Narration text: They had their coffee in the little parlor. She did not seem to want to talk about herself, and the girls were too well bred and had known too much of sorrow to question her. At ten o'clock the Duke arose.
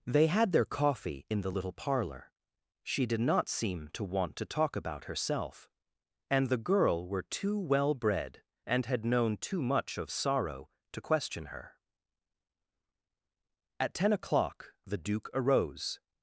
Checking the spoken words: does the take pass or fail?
fail